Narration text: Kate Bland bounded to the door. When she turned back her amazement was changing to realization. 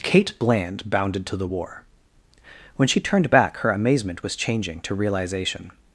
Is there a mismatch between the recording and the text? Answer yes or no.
yes